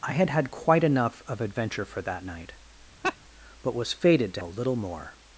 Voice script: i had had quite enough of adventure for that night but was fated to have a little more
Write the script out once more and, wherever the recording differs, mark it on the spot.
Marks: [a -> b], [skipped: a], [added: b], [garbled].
i had had quite enough of adventure for that night but was fated to [skipped: have] a little more